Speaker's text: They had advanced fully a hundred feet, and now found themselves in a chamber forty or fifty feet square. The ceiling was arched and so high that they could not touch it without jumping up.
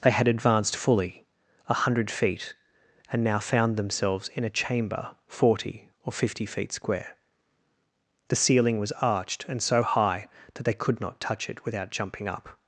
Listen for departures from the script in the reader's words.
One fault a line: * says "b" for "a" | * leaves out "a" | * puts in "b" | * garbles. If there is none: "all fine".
all fine